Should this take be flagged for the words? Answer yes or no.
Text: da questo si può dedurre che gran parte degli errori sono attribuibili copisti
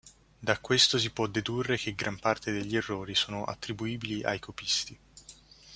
yes